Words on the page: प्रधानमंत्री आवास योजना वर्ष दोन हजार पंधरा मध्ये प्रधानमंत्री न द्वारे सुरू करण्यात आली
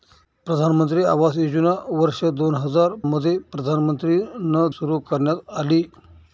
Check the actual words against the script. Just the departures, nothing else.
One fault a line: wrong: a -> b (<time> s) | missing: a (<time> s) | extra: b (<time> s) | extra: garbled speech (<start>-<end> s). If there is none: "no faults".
missing: पंधरा (3.0 s)
missing: द्वारे (4.7 s)